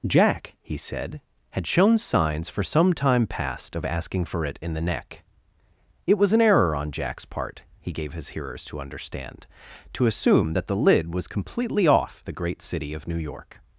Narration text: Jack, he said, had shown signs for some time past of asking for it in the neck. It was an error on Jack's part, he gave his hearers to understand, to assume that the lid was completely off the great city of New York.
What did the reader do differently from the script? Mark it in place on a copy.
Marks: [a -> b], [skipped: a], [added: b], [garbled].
Jack, he said, had shown signs for some time past of asking for it in the neck. It was an error on Jack's part, he gave his hearers to understand, to assume that the lid was completely off the great city of New York.